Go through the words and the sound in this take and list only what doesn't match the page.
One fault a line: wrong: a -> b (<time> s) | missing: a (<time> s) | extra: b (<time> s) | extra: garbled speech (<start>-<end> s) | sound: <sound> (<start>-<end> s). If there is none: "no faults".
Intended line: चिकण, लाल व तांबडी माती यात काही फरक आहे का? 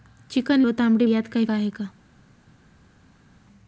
missing: लाल (0.6 s)
missing: माती (1.1 s)
missing: फरक (1.4 s)